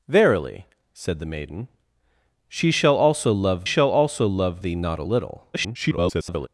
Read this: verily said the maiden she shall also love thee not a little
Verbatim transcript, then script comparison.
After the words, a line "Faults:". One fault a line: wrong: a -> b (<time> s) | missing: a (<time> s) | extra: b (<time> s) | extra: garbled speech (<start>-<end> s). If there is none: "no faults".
verily said the maiden she shall also love shall also love thee not a little [garbled]
Faults:
extra: shall also love (3.6 s)
extra: garbled speech (5.5-6.5 s)